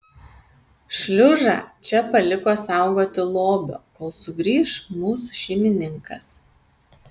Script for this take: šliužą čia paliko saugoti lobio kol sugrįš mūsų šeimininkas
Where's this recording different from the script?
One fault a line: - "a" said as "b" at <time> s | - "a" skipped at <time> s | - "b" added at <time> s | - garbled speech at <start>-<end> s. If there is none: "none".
none